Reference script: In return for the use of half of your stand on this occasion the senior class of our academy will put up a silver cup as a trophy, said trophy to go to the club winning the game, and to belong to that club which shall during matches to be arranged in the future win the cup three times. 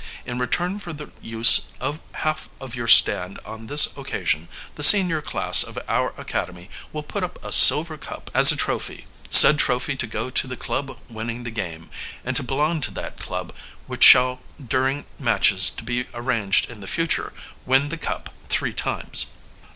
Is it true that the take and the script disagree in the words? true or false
false